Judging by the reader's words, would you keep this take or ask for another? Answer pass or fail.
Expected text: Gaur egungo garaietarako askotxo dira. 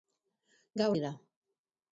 fail